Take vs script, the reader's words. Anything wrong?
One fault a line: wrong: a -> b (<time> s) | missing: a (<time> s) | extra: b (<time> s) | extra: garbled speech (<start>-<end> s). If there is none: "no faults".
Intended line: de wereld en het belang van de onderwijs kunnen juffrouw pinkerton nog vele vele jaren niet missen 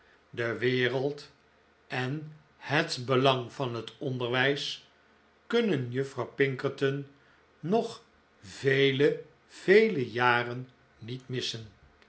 wrong: de -> het (3.8 s)